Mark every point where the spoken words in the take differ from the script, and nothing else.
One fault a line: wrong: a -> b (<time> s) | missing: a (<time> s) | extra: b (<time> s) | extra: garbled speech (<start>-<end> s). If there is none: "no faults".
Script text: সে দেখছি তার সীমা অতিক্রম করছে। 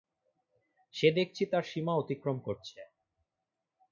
no faults